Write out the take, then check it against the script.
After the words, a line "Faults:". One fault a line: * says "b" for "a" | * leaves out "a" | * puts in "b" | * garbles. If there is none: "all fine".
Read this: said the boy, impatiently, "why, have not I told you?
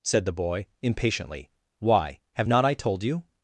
said the boy, impatiently, "why, have not I told you?
Faults:
all fine